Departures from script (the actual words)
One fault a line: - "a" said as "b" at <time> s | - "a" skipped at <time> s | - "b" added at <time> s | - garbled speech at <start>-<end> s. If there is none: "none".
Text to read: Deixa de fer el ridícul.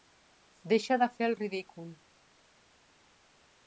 none